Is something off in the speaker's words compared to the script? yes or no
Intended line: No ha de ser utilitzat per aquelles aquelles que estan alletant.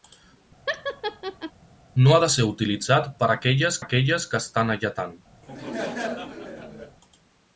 no